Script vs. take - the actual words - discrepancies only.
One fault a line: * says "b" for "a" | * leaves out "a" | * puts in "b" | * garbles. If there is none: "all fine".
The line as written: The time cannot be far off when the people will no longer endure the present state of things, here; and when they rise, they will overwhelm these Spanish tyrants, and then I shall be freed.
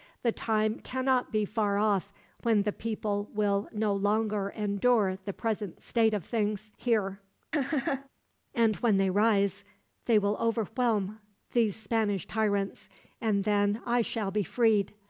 all fine